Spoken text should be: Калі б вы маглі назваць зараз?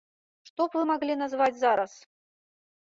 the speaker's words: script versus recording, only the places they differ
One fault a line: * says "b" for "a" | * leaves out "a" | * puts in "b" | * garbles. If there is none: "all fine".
* says "Што" for "Калі"